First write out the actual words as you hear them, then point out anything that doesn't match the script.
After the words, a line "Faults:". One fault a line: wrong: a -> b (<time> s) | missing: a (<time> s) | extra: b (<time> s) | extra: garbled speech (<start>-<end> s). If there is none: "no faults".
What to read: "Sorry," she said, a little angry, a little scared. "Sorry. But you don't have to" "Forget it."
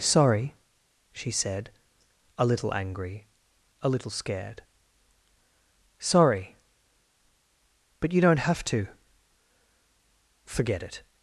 "Sorry," she said, a little angry, a little scared. "Sorry. But you don't have to" "Forget it."
Faults:
no faults